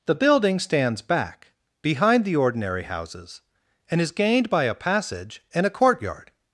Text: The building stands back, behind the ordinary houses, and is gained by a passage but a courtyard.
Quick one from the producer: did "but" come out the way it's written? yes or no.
no